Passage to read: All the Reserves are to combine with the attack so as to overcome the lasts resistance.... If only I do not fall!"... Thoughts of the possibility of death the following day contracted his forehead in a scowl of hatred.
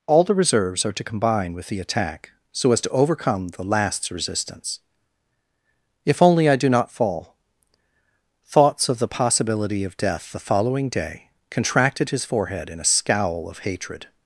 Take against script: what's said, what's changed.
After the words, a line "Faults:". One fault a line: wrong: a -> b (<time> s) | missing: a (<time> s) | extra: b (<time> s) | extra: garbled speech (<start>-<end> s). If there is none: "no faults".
All the Reserves are to combine with the attack so as to overcome the lasts resistance.... If only I do not fall!"... Thoughts of the possibility of death the following day contracted his forehead in a scowl of hatred.
Faults:
no faults